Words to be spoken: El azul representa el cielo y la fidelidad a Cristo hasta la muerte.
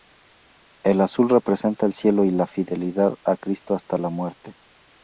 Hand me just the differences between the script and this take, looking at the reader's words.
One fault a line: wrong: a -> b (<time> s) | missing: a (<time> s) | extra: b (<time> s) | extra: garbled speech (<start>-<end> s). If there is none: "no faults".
no faults